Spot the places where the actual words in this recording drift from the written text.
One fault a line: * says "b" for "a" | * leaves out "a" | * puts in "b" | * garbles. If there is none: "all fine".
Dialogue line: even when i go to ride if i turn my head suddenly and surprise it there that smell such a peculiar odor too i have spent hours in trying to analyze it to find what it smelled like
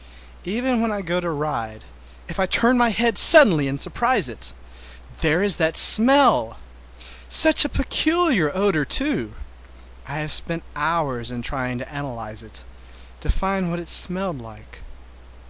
* puts in "is"